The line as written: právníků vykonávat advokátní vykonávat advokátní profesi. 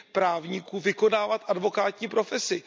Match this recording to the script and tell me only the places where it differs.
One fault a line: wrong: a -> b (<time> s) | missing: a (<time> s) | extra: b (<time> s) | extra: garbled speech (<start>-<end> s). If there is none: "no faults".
missing: vykonávat advokátní (2.1 s)